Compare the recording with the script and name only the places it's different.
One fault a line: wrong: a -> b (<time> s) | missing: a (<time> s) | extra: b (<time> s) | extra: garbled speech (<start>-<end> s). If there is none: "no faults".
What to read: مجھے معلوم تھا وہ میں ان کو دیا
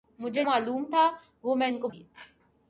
no faults